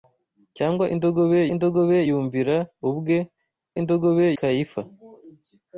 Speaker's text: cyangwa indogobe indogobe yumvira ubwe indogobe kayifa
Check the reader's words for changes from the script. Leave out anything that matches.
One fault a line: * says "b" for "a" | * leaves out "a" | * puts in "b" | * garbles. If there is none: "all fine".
all fine